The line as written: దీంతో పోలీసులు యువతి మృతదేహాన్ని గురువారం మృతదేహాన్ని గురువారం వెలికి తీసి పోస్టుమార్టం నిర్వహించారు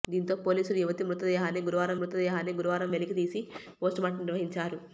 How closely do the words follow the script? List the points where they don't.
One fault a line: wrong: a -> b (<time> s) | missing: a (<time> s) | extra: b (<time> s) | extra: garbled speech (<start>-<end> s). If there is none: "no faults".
no faults